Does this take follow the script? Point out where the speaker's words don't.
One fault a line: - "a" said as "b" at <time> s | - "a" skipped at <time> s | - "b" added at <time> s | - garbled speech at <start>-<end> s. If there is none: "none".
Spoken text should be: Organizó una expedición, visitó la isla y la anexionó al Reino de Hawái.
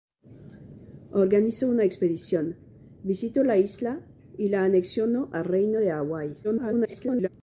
- garbled speech at 6.4-7.3 s